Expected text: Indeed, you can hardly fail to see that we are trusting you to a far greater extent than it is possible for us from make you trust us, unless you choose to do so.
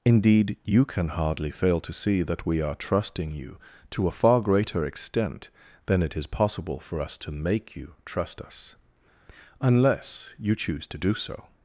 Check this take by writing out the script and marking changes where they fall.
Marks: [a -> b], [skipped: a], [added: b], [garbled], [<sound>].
Indeed, you can hardly fail to see that we are trusting you to a far greater extent than it is possible for us [from -> to] make you trust us, unless you choose to do so.